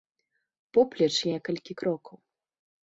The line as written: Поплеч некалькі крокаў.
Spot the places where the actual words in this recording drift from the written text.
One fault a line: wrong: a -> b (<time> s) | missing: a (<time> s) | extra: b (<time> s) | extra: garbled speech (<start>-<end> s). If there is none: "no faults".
no faults